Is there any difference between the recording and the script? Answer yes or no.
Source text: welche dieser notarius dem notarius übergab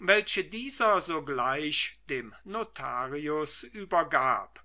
yes